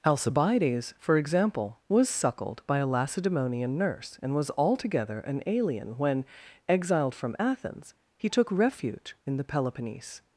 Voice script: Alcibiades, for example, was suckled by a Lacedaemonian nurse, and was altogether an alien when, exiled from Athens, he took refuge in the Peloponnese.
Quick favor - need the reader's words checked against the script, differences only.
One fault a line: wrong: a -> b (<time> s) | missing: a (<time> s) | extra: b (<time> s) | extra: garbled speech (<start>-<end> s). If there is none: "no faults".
no faults